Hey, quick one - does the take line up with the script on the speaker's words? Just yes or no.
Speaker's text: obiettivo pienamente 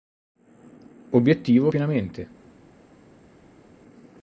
yes